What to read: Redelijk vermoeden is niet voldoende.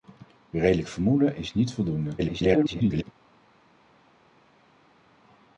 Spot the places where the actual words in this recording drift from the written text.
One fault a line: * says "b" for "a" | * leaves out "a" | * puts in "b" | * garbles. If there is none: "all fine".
* garbles